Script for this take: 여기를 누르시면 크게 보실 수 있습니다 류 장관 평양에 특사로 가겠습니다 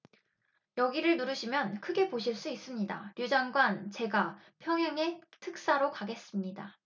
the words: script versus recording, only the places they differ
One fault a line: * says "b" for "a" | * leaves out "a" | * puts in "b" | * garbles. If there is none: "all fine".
* puts in "제가"